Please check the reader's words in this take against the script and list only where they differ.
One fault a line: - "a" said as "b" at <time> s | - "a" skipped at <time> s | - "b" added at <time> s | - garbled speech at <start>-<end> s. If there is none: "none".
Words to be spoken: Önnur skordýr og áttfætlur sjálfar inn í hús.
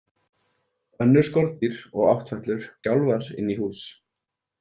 none